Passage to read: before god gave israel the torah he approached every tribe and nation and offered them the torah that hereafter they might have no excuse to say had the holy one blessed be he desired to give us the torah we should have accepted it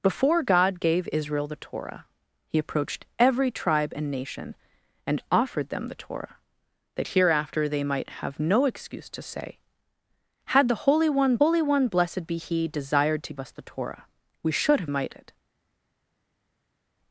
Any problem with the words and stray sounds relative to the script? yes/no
yes